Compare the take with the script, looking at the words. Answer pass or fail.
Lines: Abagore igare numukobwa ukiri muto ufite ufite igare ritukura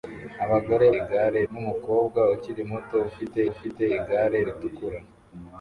pass